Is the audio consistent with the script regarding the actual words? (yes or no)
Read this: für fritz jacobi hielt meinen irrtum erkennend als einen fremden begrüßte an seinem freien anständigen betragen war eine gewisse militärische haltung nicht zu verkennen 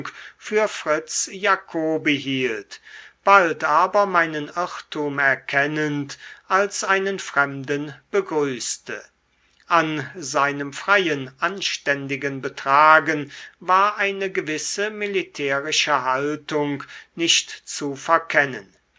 no